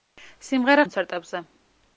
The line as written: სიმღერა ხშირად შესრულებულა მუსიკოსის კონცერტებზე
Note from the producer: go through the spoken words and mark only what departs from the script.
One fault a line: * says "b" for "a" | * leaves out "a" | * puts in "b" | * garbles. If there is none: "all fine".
* leaves out "ხშირად შესრულებულა მუსიკოსის"